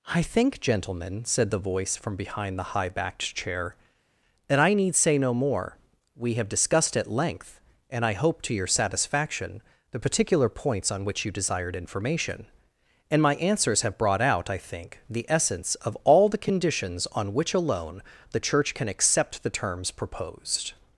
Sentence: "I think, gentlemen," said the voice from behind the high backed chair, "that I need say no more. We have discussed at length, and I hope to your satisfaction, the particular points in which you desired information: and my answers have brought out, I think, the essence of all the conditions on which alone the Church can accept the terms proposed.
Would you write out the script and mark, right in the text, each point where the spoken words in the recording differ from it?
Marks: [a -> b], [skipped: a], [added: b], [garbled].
"I think, gentlemen," said the voice from behind the high backed chair, "that I need say no more. We have discussed at length, and I hope to your satisfaction, the particular points [in -> on] which you desired information: and my answers have brought out, I think, the essence of all the conditions on which alone the Church can accept the terms proposed.